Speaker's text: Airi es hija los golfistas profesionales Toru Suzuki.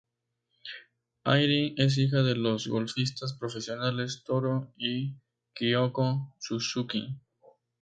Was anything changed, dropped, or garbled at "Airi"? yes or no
no